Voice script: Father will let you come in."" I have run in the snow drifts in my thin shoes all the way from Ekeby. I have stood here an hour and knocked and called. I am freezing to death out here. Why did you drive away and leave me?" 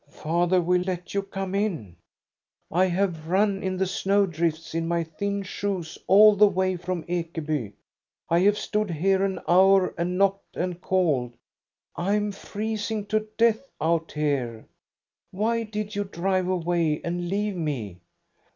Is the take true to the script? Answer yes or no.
yes